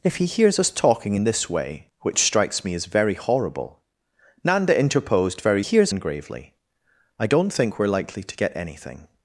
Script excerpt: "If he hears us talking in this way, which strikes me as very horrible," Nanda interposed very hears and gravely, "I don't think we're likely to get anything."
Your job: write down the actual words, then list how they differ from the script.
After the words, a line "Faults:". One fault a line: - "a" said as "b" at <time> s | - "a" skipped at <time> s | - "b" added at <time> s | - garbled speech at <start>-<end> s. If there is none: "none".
"If he hears us talking in this way, which strikes me as very horrible," Nanda interposed very hears and gravely, "I don't think we're likely to get anything."
Faults:
none